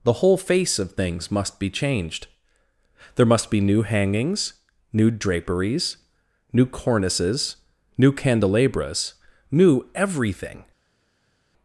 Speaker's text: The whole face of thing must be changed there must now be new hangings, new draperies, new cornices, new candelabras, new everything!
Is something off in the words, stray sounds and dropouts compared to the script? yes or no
yes